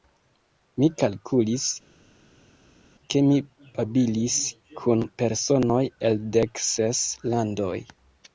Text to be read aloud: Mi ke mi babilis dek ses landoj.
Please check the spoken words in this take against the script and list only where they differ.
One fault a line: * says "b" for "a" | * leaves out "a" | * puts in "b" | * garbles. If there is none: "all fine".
* puts in "kalkulis"
* puts in "kun personoj el"